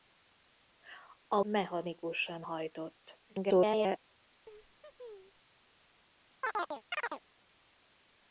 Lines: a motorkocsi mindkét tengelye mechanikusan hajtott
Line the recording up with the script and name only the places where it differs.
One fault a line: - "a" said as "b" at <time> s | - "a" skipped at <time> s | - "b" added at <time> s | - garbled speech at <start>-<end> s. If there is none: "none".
- "motorkocsi mindkét tengelye" skipped at 1.4 s
- garbled speech at 3.3-4.0 s